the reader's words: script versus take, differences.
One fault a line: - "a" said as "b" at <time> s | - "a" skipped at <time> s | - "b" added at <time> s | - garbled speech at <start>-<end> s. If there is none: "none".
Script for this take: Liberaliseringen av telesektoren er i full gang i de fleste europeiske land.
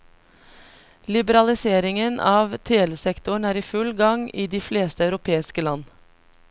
none